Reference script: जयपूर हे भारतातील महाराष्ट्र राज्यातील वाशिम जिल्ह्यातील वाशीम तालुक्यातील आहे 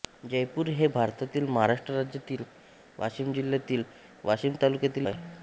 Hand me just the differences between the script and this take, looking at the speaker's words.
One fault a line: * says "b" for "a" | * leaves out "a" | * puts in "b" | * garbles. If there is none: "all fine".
all fine